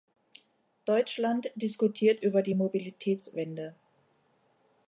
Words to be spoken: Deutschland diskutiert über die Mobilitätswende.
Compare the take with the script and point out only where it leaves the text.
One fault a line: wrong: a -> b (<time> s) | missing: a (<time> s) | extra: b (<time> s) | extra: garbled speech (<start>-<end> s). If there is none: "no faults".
no faults